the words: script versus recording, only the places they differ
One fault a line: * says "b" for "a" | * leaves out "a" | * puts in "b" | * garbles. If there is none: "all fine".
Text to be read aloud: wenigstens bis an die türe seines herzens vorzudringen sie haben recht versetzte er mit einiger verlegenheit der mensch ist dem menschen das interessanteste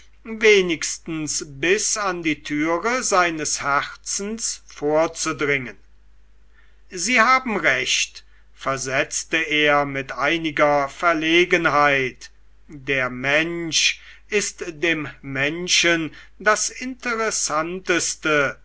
all fine